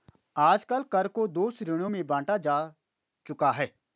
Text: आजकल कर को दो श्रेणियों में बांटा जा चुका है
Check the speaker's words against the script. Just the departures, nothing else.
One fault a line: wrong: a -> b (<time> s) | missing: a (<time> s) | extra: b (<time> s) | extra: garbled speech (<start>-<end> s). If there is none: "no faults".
no faults